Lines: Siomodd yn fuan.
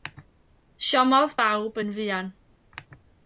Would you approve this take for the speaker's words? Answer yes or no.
no